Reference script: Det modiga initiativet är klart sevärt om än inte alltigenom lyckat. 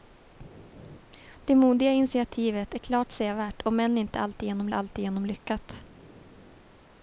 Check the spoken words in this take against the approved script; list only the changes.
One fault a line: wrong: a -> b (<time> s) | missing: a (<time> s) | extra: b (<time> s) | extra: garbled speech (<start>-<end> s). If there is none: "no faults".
extra: alltigenom (4.7 s)